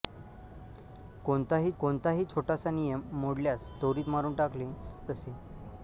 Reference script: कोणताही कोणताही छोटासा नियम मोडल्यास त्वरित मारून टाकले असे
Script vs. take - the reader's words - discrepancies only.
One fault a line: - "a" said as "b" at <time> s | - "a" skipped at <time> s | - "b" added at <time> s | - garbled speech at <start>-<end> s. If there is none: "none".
none